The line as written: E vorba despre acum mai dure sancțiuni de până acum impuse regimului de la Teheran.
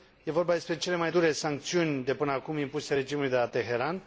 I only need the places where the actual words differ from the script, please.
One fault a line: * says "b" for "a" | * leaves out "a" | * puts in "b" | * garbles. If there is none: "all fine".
* says "cele" for "acum"